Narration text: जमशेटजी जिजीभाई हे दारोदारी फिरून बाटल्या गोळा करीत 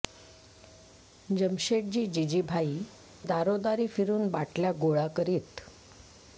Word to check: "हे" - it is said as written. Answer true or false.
false